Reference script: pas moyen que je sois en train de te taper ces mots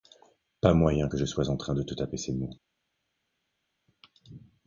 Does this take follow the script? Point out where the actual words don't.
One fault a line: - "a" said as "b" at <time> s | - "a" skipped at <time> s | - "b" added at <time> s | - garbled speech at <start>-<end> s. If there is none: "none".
none